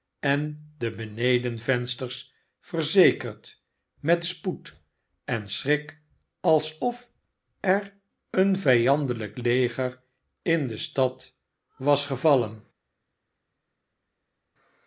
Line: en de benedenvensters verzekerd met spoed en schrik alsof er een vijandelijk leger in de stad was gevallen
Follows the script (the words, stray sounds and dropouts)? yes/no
yes